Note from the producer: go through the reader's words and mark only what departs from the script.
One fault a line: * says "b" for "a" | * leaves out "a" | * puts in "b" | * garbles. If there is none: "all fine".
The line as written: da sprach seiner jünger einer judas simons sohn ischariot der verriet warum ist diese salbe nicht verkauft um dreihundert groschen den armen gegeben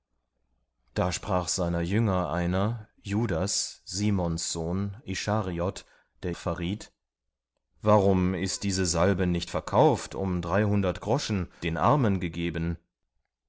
all fine